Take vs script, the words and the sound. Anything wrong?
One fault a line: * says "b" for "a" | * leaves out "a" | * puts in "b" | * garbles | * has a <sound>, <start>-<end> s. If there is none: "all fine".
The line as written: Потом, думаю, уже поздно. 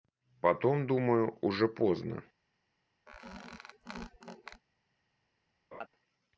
* has a squeak, 3.1-4.6 s
* has a laugh, 5.7-5.9 s